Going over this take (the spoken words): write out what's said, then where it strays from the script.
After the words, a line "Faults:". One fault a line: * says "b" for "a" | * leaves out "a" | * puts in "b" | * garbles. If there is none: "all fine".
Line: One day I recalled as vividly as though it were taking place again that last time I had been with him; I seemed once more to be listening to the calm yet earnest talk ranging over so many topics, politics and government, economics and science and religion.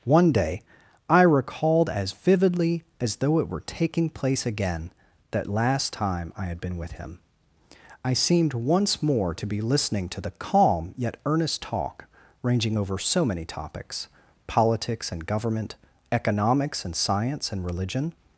One day I recalled as vividly as though it were taking place again that last time I had been with him; I seemed once more to be listening to the calm yet earnest talk ranging over so many topics, politics and government, economics and science and religion.
Faults:
all fine